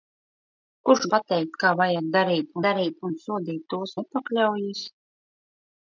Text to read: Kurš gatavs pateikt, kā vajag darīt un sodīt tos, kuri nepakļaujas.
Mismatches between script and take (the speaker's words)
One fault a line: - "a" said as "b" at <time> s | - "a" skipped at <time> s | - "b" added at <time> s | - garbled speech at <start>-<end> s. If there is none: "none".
- "gatavs" skipped at 1.0 s
- "darīt" added at 2.7 s
- "kuri" skipped at 4.0 s